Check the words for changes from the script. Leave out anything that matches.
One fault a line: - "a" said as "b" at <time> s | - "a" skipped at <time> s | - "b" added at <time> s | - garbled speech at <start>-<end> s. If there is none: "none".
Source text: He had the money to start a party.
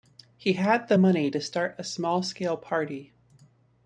- "small scale" added at 1.8 s